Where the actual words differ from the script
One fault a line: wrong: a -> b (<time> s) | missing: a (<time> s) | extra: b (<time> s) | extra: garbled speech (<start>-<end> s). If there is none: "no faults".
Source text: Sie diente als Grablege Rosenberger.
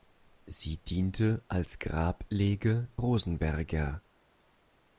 no faults